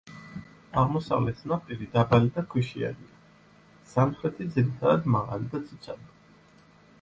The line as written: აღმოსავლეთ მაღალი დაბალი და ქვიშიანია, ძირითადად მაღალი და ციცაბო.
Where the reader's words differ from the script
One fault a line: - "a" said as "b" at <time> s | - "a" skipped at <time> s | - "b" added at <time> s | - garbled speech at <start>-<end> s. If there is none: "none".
- "მაღალი" said as "ნაპირი" at 1.5 s
- "სამხრეთი" added at 3.9 s